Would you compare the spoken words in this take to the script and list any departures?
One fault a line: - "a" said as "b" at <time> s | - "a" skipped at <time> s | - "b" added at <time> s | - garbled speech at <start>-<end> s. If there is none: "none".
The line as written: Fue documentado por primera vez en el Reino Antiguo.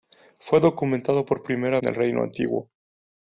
- "vez" skipped at 1.8 s